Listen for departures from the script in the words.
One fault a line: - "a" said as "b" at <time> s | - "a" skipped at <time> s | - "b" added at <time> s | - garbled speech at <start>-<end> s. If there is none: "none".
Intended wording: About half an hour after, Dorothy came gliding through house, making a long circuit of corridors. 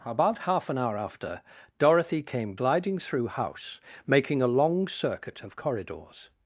none